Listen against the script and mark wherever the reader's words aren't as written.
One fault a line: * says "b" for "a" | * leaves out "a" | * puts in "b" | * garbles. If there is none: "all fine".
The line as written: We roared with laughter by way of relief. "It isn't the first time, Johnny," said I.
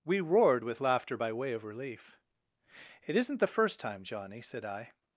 all fine